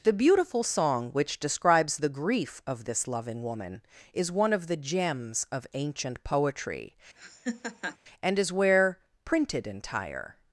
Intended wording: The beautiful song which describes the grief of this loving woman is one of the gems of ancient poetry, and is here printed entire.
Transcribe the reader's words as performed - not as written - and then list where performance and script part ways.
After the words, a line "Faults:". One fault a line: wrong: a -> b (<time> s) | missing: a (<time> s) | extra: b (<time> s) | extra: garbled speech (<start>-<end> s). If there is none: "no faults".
The beautiful song which describes the grief of this loving woman is one of the gems of ancient poetry, and is where printed entire.
Faults:
wrong: here -> where (8.5 s)